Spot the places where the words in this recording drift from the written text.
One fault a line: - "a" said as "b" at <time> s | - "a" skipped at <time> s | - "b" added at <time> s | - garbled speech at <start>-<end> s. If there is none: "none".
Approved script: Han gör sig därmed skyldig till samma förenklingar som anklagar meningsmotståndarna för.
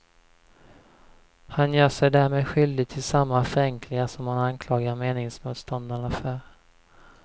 - "han" added at 4.3 s